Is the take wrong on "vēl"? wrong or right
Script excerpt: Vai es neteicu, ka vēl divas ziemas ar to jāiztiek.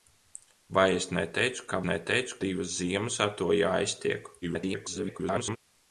wrong